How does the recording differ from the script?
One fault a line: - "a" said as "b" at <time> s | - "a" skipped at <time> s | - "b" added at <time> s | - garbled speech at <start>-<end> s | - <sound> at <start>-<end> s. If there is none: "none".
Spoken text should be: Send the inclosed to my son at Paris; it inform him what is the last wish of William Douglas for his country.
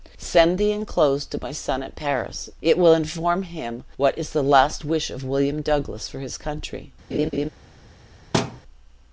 - "will" added at 2.8 s
- laugh at 7.1-7.5 s
- thud at 8.3-8.6 s